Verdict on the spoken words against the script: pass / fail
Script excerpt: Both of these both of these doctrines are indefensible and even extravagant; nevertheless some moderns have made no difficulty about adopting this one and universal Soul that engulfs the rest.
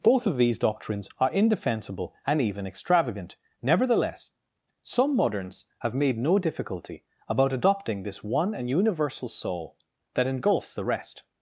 fail